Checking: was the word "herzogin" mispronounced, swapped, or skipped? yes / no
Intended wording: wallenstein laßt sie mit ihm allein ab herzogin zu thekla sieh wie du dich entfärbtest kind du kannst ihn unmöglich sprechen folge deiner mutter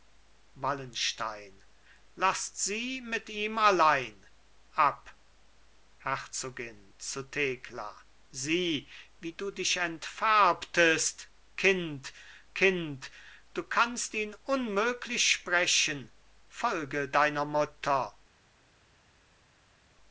no